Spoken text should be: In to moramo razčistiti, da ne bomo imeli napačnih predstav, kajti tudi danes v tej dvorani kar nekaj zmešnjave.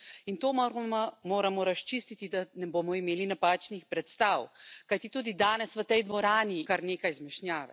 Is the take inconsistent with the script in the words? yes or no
no